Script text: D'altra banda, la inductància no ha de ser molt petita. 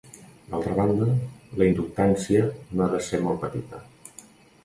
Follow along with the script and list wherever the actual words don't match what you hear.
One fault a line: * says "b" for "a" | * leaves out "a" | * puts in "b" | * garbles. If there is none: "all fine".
all fine